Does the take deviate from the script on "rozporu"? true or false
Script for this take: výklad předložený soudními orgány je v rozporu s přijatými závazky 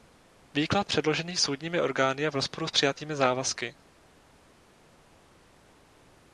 false